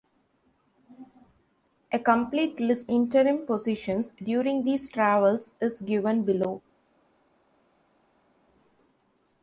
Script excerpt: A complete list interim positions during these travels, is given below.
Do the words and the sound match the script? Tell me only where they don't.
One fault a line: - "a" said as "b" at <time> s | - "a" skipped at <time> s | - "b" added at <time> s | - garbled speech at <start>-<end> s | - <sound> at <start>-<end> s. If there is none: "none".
none